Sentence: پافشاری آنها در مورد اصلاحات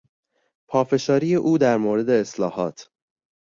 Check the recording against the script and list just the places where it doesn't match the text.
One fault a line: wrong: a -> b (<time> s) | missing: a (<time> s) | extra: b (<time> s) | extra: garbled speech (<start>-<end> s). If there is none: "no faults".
wrong: آنها -> او (1.4 s)